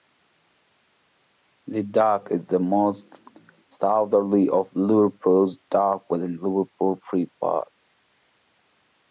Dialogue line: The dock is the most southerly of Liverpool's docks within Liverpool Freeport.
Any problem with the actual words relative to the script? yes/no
no